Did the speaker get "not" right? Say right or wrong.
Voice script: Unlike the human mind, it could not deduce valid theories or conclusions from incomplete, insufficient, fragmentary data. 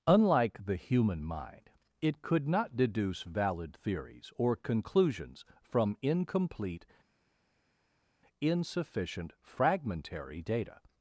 right